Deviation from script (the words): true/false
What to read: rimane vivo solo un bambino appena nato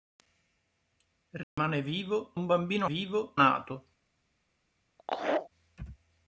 true